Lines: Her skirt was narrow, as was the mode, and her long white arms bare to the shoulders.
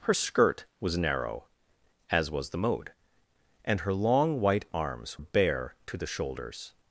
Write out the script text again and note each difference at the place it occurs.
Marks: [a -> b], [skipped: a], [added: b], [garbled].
Her skirt was narrow, as was the mode, and her long white arms bare to the shoulders.